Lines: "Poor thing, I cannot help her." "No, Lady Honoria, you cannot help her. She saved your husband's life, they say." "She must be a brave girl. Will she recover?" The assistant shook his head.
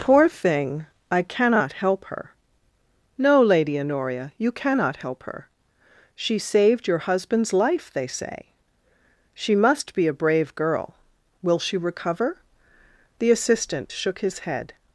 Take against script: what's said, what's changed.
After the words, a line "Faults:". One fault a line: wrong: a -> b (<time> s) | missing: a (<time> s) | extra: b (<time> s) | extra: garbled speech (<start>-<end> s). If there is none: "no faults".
"Poor thing, I cannot help her." "No, Lady Honoria, you cannot help her. She saved your husband's life, they say." "She must be a brave girl. Will she recover?" The assistant shook his head.
Faults:
no faults